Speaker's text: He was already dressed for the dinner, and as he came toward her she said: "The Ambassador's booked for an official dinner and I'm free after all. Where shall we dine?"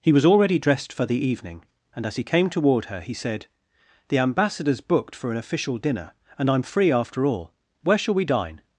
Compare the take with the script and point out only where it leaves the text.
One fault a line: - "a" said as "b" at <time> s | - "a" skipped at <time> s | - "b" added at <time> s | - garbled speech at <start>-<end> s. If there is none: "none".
- "dinner" said as "evening" at 1.2 s
- "she" said as "he" at 3.0 s